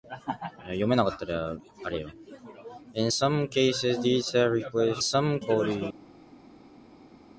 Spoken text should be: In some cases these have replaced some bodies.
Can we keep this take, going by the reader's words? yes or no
yes